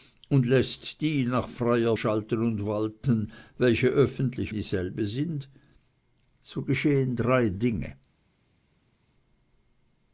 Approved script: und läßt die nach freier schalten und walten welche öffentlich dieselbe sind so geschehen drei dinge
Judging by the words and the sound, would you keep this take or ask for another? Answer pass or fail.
pass